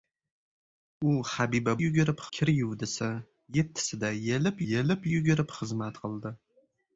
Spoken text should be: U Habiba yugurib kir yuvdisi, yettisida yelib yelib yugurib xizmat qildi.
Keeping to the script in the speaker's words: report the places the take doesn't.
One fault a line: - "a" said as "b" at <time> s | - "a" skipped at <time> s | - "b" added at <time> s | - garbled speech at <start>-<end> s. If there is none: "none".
none